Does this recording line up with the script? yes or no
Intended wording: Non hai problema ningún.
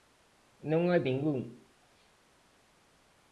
no